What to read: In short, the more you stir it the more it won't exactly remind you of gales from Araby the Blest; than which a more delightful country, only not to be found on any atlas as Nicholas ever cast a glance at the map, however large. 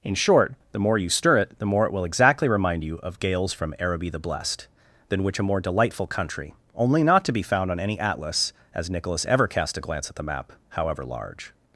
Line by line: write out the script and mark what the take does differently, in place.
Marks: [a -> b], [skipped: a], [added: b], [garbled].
In short, the more you stir it the more it [won't -> will] exactly remind you of gales from Araby the Blest; than which a more delightful country, only not to be found on any atlas as Nicholas ever cast a glance at the map, however large.